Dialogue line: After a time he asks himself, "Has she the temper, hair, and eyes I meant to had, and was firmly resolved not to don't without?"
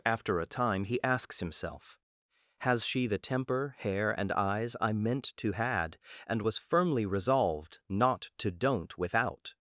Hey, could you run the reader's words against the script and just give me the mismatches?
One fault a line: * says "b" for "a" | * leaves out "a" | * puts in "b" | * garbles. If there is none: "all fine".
all fine